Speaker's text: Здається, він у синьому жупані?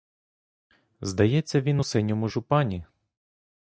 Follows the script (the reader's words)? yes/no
yes